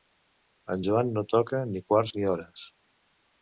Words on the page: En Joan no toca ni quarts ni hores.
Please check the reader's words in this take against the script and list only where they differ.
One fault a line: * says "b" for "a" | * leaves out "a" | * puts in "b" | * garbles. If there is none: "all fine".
all fine